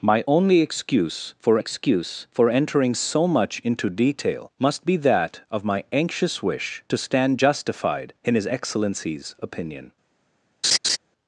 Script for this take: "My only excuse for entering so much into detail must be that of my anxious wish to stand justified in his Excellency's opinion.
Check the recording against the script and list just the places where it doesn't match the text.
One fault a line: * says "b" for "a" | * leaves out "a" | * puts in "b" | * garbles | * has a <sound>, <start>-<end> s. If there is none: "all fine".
* puts in "excuse for"
* has a laugh, 10.6-11.0 s